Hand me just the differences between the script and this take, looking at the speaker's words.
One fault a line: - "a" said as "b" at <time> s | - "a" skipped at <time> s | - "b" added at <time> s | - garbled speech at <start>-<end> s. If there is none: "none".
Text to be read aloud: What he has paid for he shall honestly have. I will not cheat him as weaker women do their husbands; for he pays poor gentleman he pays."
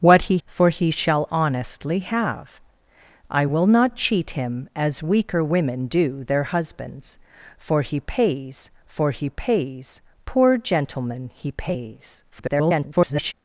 - "has paid" skipped at 0.4 s
- "for he pays" added at 8.9 s
- garbled speech at 12.3-13.3 s